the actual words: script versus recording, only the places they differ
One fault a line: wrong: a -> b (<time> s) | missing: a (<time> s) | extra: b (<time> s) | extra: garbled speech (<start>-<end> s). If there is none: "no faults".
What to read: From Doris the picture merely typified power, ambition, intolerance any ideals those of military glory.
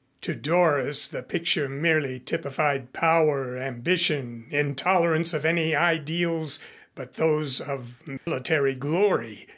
wrong: From -> To (0.2 s)
extra: of (5.3 s)
extra: but (6.9 s)